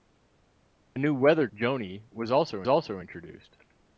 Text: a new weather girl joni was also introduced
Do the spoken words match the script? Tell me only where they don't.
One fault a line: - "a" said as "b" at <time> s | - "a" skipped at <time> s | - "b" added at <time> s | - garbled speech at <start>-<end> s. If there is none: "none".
- "girl" skipped at 1.5 s
- "also" added at 2.7 s